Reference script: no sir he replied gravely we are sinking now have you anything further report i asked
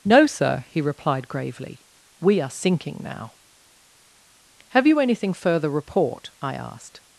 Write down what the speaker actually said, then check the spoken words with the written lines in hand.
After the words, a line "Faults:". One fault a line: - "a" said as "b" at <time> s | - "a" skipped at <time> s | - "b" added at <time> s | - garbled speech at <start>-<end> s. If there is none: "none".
no sir he replied gravely we are sinking now have you anything further report i asked
Faults:
none